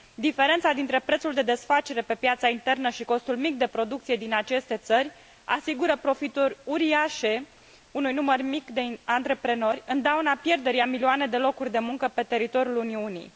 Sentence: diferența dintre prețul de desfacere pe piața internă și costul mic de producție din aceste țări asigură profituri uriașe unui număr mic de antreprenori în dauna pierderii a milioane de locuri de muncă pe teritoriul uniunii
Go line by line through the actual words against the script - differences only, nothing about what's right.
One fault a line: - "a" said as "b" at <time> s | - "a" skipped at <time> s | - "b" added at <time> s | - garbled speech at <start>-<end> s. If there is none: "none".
none